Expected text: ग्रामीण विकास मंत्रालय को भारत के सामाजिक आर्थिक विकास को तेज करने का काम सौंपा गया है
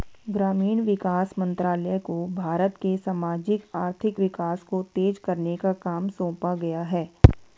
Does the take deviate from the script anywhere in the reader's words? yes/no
no